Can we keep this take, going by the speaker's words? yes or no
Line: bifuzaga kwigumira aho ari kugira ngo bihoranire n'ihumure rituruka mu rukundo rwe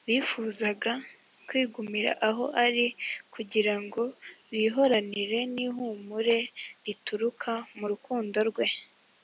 yes